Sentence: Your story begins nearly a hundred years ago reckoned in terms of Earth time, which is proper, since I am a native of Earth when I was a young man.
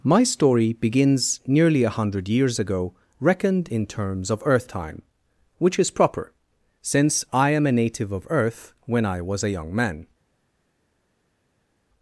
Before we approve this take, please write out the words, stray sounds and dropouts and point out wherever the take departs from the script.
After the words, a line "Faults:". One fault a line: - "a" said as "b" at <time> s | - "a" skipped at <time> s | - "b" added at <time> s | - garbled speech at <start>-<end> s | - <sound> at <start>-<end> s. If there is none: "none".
My story begins nearly a hundred years ago reckoned in terms of Earth time, which is proper, since I am a native of Earth when I was a young man.
Faults:
- "Your" said as "My" at 0.0 s